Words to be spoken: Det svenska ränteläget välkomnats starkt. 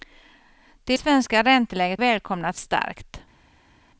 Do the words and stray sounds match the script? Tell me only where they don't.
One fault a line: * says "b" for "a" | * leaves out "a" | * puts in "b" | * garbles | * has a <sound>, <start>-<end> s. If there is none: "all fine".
all fine